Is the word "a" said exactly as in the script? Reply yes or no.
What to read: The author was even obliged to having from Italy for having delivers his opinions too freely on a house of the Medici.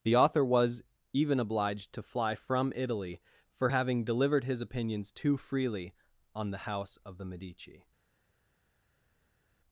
no